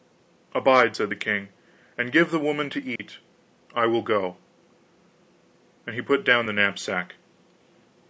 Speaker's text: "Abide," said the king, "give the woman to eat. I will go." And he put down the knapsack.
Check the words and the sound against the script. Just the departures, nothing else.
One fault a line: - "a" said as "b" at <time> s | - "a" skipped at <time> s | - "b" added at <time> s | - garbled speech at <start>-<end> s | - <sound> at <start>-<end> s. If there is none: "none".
- "and" added at 2.0 s
- dropout at 3.0-3.0 s